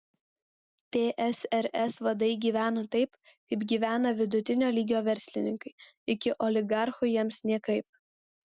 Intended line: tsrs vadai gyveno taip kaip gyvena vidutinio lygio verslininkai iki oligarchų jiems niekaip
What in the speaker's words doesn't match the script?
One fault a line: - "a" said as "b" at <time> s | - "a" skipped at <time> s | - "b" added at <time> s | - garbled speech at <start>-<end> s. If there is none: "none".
none